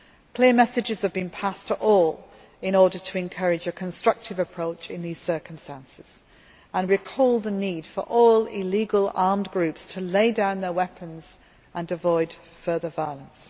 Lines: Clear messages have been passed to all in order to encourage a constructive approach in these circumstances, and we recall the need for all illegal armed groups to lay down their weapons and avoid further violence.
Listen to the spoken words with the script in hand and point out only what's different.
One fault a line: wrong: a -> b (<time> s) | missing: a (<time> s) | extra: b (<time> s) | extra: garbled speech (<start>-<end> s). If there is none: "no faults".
missing: we (6.9 s)